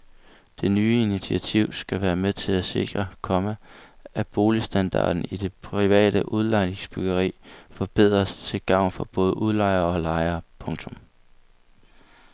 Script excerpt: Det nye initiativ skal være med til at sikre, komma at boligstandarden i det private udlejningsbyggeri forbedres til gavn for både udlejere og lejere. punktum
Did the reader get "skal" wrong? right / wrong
right